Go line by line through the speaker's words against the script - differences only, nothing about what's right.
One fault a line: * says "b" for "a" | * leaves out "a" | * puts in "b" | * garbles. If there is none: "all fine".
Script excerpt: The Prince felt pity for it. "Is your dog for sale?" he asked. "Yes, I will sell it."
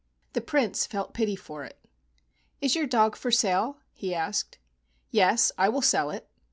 all fine